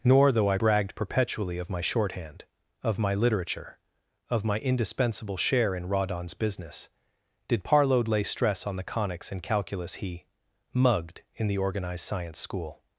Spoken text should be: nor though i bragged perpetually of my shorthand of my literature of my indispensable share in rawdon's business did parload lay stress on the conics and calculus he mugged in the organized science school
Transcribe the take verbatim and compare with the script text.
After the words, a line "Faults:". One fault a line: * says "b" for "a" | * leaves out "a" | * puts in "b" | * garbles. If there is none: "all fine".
nor though i bragged perpetually of my shorthand of my literature of my indispensable share in rawdon's business did parload lay stress on the conics and calculus he mugged in the organized science school
Faults:
all fine